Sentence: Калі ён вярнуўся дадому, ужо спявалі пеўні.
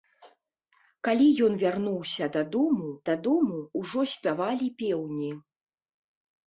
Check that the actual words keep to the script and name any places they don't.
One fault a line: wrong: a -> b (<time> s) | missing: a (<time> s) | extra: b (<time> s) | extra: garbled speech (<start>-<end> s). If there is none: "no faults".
extra: дадому (3.1 s)